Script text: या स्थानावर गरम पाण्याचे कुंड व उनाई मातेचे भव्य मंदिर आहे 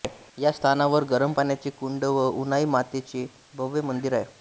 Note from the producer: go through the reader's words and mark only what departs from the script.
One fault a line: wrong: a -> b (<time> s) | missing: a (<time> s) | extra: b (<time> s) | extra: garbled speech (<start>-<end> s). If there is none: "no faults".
no faults